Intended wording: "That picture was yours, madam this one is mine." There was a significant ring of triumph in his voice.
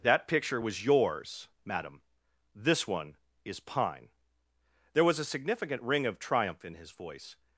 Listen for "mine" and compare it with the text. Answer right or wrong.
wrong